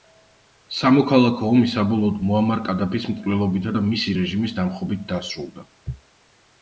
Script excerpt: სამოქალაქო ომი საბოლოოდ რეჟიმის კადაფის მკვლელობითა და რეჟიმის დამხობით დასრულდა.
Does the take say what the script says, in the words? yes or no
no